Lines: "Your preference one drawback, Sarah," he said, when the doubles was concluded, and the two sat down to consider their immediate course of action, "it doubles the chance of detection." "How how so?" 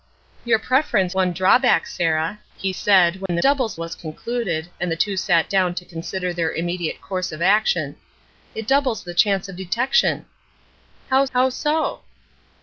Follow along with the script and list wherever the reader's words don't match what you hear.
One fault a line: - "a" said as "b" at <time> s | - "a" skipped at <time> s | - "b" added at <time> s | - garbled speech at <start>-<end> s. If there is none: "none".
none